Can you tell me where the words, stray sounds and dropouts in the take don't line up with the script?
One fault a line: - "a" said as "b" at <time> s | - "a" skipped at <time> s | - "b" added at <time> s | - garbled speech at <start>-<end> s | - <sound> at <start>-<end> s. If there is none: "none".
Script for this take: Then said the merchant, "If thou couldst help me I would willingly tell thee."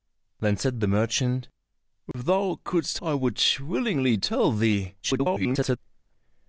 - dropout at 2.1-2.1 s
- "help me" skipped at 3.0 s
- garbled speech at 5.0-5.8 s